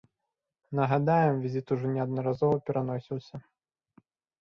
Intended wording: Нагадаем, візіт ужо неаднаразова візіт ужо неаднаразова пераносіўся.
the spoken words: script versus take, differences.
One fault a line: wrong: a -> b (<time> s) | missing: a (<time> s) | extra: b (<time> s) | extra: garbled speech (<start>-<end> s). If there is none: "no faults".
missing: візіт ужо неаднаразова (2.6 s)